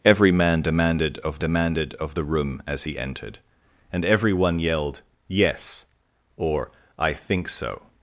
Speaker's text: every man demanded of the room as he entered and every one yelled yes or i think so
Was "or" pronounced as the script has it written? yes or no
yes